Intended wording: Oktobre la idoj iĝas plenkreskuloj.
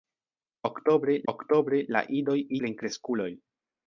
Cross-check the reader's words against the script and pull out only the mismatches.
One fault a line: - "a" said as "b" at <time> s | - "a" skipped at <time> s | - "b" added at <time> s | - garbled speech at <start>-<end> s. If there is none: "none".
- "oktobre" added at 1.3 s
- "iĝas" skipped at 2.4 s